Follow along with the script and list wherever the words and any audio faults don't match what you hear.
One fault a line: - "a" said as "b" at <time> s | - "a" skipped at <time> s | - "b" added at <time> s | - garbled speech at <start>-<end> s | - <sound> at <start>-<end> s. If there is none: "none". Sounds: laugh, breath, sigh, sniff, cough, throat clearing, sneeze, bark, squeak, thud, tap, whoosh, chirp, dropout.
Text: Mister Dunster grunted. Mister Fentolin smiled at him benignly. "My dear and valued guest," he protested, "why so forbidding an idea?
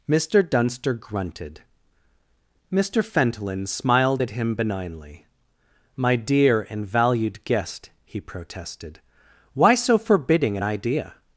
none